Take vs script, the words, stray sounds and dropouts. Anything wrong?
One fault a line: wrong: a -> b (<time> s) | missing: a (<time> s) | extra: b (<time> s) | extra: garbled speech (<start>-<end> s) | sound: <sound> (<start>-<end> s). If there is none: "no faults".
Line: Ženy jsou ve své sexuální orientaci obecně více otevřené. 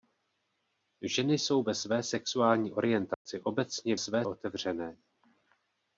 sound: dropout (3.1-3.3 s)
wrong: více -> své (4.0 s)